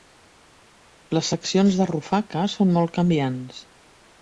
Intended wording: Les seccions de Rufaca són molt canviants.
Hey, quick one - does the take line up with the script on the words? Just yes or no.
yes